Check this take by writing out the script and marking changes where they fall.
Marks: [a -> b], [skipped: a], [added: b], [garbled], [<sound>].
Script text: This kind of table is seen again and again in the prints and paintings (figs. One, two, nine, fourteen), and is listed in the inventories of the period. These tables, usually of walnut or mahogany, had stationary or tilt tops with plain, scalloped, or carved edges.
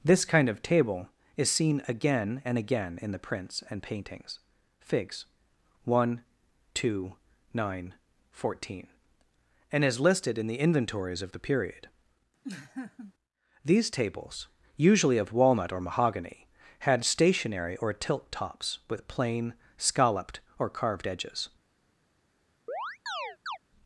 This kind of table is seen again and again in the prints and paintings (figs. One, two, nine, fourteen), and is listed in the inventories of the period. [laugh] These tables, usually of walnut or mahogany, had stationary or tilt tops with plain, scalloped, or carved edges. [chirp]